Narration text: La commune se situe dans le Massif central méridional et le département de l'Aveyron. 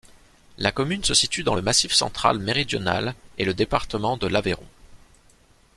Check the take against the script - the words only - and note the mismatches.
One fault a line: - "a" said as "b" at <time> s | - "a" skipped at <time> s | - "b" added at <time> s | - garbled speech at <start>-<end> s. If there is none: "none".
none